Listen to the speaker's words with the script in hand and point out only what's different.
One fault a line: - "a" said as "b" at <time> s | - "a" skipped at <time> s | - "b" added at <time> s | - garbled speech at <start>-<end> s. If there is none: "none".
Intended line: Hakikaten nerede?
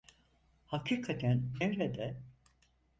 none